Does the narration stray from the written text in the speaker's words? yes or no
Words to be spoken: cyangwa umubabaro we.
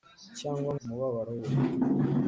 no